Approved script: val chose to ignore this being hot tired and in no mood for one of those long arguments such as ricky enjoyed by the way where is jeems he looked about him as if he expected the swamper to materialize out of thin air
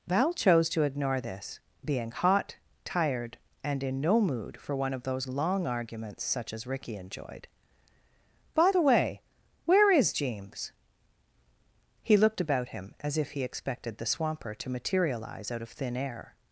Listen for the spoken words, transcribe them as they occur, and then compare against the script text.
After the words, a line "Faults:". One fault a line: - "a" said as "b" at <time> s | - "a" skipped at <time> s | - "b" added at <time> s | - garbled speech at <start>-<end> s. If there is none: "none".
val chose to ignore this being hot tired and in no mood for one of those long arguments such as ricky enjoyed by the way where is jeems he looked about him as if he expected the swamper to materialize out of thin air
Faults:
none